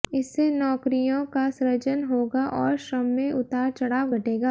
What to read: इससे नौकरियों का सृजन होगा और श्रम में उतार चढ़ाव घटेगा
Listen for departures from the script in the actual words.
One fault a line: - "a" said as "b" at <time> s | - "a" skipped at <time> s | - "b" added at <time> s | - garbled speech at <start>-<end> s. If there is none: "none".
none